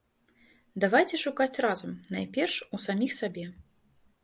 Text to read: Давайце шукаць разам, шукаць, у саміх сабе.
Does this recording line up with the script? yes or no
no